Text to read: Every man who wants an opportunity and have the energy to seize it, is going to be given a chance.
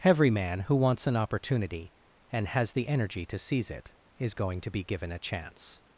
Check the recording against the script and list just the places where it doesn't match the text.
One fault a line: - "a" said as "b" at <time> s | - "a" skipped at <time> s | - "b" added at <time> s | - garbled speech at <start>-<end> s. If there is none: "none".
- "have" said as "has" at 2.5 s